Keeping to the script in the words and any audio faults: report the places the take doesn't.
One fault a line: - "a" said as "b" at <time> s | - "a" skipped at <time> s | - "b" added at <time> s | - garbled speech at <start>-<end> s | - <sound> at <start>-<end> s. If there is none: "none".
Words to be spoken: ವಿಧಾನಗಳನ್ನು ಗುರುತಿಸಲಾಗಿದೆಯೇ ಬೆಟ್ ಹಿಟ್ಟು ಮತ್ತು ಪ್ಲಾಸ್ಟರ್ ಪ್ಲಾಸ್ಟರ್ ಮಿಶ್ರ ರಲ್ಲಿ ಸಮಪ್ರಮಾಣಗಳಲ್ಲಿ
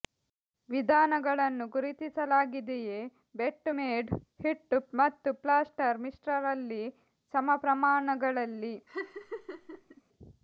- "ಮೇಡ್" added at 3.8 s
- "ಪ್ಲಾಸ್ಟರ್" skipped at 6.0 s
- laugh at 8.9-10.0 s